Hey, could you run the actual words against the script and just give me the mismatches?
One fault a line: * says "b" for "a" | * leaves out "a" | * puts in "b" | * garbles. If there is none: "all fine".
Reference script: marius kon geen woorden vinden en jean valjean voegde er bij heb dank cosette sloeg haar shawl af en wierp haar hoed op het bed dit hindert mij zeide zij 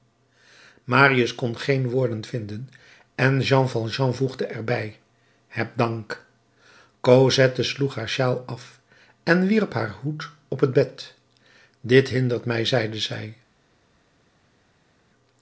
all fine